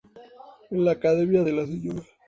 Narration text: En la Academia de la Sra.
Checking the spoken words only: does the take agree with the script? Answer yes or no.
yes